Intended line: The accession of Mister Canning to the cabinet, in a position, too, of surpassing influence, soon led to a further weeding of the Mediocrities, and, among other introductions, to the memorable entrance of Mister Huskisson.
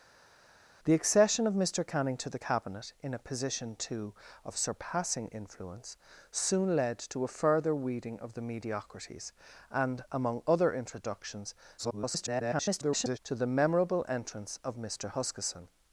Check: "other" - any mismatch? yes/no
no